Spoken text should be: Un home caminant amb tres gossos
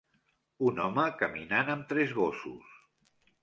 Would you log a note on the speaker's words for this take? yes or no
no